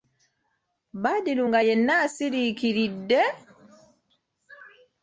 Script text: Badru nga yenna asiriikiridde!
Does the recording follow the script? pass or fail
pass